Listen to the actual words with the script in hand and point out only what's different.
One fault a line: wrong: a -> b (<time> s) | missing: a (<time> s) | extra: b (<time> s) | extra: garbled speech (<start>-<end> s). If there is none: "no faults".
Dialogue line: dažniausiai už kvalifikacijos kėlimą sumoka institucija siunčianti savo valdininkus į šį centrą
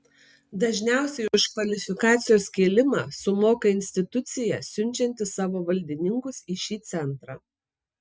no faults